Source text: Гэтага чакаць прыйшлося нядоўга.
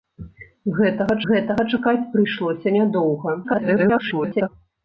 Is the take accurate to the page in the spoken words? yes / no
no